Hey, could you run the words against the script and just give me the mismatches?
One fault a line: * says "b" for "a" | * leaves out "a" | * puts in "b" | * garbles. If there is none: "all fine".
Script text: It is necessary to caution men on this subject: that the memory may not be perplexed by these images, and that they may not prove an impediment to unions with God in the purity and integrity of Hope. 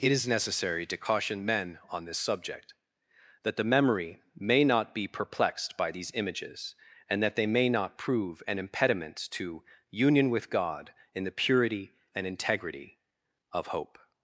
* says "union" for "unions"